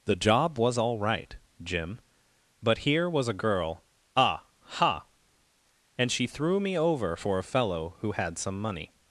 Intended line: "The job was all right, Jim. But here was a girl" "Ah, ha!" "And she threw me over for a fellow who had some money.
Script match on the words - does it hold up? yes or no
yes